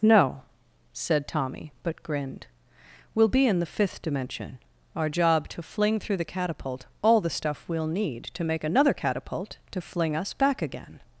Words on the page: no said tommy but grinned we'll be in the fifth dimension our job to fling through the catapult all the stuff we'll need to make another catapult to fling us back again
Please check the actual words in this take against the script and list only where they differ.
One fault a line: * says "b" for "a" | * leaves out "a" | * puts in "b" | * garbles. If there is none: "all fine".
all fine